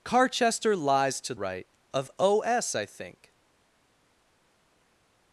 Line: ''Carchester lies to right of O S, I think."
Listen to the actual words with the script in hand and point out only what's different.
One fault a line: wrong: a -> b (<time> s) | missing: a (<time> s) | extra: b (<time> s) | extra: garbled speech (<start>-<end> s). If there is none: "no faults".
no faults